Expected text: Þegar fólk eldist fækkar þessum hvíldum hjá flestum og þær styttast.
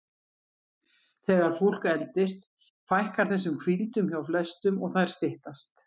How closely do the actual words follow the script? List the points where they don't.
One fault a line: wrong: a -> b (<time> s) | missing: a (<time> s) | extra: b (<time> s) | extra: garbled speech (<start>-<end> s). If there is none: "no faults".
no faults